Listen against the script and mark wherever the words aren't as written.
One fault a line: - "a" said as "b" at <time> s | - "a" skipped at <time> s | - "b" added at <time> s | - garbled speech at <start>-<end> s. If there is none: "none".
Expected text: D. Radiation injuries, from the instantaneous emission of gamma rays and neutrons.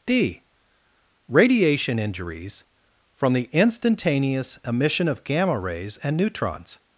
none